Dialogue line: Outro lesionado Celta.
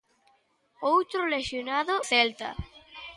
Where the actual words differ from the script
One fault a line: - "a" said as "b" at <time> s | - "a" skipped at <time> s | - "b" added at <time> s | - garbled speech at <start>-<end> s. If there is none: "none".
none